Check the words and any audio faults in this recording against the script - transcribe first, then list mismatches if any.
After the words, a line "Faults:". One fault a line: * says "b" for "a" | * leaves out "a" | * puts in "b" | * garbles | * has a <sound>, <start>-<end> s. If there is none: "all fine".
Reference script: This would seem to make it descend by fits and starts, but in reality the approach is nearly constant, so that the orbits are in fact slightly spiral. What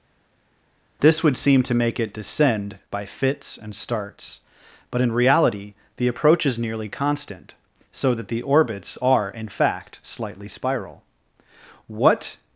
This would seem to make it descend by fits and starts, but in reality the approach is nearly constant, so that the orbits are in fact slightly spiral. What
Faults:
all fine